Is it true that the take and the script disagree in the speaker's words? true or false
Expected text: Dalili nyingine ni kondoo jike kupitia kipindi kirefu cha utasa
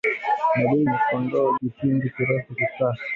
true